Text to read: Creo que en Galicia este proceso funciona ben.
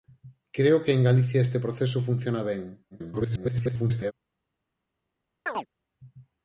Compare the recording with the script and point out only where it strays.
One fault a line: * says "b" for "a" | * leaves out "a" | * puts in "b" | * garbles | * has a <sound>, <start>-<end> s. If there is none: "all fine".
* garbles
* has a chirp, 5.5-5.7 s